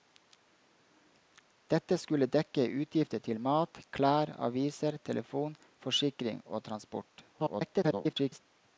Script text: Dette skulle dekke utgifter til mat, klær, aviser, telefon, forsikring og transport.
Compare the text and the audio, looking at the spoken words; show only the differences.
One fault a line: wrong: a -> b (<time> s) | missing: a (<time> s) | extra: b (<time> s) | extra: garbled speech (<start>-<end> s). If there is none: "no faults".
extra: garbled speech (7.3-8.4 s)